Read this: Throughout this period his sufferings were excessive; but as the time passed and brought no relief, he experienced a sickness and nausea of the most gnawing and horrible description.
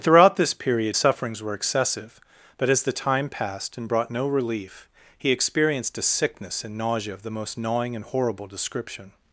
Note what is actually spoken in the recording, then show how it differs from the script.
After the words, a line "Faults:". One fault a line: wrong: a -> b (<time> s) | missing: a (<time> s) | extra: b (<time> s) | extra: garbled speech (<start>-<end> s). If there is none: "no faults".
Throughout this period sufferings were excessive; but as the time passed and brought no relief, he experienced a sickness and nausea of the most gnawing and horrible description.
Faults:
missing: his (1.0 s)